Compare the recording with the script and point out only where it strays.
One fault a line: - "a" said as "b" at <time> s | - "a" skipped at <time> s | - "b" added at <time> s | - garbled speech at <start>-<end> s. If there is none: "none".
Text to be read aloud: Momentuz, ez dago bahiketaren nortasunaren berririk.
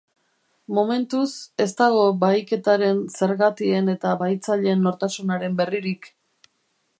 - "zergatien eta bahitzaileen" added at 3.2 s